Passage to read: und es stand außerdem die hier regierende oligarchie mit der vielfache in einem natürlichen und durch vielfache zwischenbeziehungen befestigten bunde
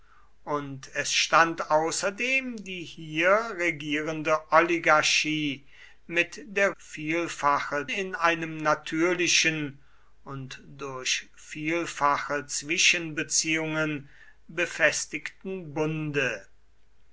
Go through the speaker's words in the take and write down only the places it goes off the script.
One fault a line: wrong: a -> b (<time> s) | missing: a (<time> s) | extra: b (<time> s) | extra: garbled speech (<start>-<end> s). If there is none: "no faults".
no faults